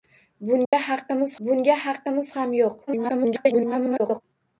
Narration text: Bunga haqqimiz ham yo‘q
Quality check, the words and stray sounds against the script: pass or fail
fail